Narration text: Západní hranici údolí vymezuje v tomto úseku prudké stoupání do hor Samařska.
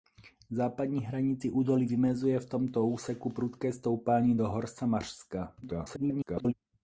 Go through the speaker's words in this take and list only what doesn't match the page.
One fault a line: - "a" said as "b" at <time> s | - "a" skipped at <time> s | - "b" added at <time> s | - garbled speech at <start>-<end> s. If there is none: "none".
- garbled speech at 5.6-6.5 s